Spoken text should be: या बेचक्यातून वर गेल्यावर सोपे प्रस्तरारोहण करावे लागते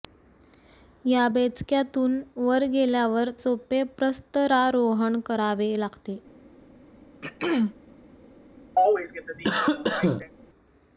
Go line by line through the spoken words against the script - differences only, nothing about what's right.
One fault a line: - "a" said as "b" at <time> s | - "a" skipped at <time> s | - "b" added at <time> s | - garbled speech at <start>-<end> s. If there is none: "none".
none